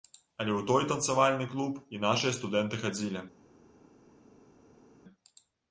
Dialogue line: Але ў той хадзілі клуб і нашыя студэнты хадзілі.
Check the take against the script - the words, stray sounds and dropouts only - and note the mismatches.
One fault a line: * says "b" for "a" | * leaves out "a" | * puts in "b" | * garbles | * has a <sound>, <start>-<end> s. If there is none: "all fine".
* says "танцавальны" for "хадзілі"